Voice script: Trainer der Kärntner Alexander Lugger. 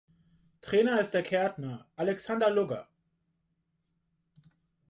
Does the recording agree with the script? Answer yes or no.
no